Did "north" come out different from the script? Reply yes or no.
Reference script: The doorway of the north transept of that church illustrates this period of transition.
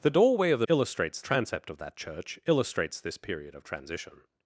yes